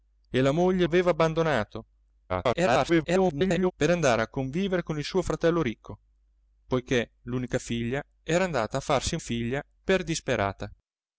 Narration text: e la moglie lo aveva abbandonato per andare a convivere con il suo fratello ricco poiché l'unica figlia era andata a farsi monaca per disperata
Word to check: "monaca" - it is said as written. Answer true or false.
false